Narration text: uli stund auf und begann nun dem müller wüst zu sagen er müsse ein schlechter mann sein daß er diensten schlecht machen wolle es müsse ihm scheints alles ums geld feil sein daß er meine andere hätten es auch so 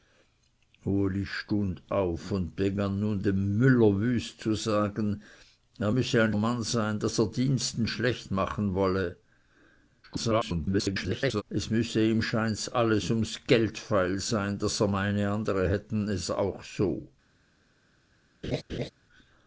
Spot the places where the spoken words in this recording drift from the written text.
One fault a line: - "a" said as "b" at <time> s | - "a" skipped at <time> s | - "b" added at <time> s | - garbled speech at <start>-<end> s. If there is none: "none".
- "schlechter" skipped at 6.3 s
- garbled speech at 10.0-11.4 s